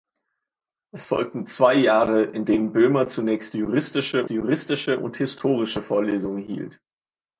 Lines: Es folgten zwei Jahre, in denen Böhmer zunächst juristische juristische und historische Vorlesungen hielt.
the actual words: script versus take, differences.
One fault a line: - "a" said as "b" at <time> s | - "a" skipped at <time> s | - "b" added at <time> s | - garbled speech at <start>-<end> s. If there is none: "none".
none